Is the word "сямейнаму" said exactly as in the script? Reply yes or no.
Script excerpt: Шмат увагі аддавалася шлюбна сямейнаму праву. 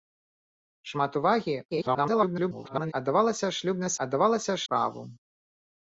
no